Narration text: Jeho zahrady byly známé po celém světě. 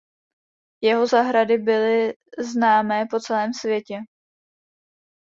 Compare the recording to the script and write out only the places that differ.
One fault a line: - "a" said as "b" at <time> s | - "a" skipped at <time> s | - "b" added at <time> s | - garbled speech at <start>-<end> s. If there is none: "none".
none